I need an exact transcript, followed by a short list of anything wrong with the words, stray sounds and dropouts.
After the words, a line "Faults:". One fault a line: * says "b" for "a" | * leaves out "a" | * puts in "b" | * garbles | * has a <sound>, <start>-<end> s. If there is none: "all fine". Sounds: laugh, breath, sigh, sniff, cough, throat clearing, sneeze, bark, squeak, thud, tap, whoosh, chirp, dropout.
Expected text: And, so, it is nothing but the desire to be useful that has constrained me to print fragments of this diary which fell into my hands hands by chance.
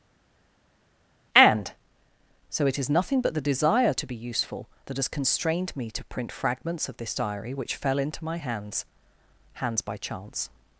And, so, it is nothing but the desire to be useful that has constrained me to print fragments of this diary which fell into my hands hands by chance.
Faults:
all fine